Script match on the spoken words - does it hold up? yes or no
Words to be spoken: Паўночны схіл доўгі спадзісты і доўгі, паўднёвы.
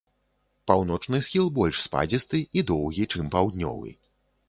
no